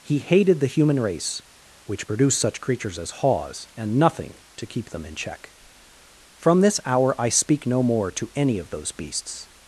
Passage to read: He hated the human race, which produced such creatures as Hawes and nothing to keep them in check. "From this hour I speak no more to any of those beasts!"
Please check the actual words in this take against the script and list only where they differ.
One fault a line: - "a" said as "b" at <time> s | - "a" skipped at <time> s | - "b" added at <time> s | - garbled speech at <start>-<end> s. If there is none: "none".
none